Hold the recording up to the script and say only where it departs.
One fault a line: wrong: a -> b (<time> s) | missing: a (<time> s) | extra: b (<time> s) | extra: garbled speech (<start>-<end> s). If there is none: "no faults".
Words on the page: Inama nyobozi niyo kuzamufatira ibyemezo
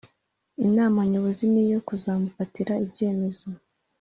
no faults